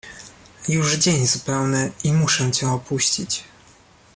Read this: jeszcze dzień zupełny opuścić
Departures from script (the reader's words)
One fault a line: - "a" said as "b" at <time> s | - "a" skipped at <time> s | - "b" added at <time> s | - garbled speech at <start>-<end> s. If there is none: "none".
- "jeszcze" said as "już" at 0.7 s
- "i muszę cię" added at 2.0 s